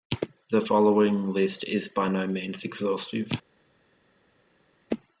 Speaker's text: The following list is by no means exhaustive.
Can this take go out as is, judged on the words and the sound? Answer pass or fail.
pass